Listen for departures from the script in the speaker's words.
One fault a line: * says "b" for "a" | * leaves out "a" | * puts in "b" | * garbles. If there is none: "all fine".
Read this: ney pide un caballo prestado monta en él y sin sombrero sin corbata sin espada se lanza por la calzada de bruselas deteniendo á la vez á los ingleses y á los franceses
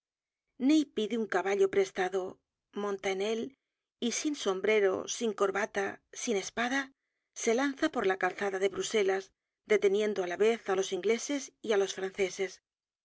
all fine